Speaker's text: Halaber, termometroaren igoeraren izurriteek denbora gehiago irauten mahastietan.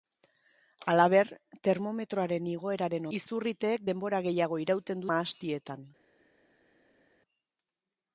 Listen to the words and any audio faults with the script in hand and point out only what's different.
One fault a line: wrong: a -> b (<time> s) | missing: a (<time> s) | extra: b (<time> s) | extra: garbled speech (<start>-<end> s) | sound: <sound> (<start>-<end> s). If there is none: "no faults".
no faults